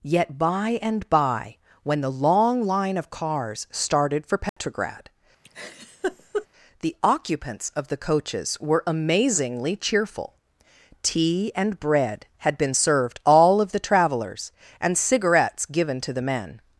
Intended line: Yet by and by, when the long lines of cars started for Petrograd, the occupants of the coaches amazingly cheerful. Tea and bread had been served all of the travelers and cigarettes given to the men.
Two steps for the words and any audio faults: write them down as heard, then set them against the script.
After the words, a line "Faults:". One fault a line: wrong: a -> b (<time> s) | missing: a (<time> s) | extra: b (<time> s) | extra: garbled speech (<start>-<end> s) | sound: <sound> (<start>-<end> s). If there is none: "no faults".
Yet by and by, when the long line of cars started for Petrograd, the occupants of the coaches were amazingly cheerful. Tea and bread had been served all of the travelers and cigarettes given to the men.
Faults:
wrong: lines -> line (2.6 s)
sound: dropout (4.5-4.6 s)
sound: laugh (5.4-6.5 s)
extra: were (8.6 s)